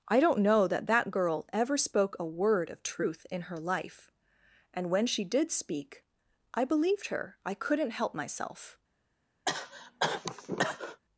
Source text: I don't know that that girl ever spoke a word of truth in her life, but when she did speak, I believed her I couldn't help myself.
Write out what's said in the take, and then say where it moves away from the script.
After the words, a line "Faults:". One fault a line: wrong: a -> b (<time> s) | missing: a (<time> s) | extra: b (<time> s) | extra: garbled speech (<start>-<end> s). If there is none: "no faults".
I don't know that that girl ever spoke a word of truth in her life, and when she did speak, I believed her I couldn't help myself.
Faults:
wrong: but -> and (4.7 s)